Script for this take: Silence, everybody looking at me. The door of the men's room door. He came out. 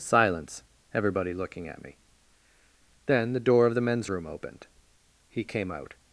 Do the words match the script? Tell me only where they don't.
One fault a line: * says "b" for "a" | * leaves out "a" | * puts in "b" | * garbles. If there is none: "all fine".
* puts in "Then"
* says "opened" for "door"